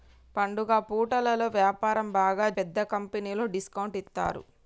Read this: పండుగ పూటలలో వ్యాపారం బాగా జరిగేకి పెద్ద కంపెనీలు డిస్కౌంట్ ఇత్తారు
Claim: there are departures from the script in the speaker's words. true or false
true